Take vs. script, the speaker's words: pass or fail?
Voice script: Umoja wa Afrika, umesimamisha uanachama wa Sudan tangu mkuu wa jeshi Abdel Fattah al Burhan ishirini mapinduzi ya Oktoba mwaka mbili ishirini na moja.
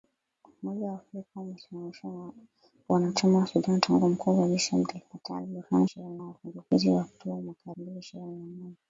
pass